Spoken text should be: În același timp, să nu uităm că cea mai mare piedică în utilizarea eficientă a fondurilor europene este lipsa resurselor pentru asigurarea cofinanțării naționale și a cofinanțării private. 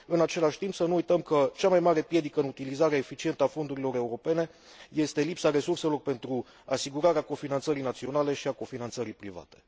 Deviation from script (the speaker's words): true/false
false